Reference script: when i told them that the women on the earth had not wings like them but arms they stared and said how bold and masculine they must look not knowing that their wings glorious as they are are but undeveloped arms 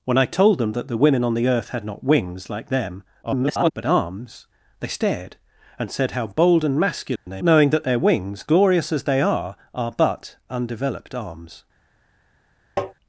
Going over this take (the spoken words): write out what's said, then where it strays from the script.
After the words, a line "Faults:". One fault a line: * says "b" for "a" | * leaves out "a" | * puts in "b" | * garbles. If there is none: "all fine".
when i told them that the women on the earth had not wings like them [garbled] but arms they stared and said how bold and masculine they knowing that their wings glorious as they are are but undeveloped arms
Faults:
* garbles
* leaves out "must look not"